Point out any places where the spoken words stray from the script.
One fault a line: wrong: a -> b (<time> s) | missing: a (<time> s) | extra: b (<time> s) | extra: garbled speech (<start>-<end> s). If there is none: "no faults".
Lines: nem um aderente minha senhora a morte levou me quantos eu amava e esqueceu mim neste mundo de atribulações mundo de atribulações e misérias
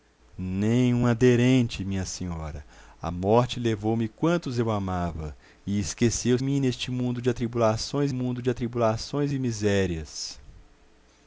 no faults